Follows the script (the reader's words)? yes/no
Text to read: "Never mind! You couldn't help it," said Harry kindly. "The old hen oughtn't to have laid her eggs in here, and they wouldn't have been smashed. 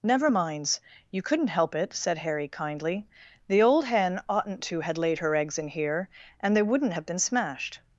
no